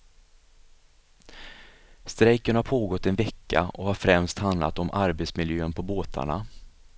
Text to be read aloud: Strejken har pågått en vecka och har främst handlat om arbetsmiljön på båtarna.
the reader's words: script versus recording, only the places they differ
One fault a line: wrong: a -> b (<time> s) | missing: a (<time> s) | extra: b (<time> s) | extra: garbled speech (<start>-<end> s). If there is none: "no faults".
no faults